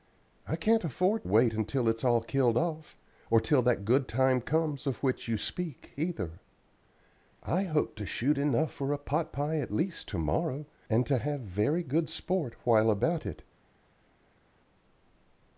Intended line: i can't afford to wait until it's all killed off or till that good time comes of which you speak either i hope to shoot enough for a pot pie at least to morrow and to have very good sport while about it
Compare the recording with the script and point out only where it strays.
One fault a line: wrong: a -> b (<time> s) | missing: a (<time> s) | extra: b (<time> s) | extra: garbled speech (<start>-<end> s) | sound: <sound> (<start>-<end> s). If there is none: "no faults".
missing: to (1.2 s)